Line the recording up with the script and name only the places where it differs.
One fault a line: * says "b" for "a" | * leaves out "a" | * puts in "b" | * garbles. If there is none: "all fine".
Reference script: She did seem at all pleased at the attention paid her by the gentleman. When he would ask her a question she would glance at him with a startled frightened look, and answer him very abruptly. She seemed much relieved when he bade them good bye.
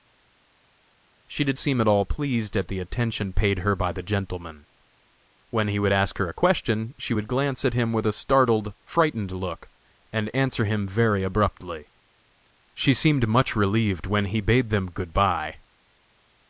all fine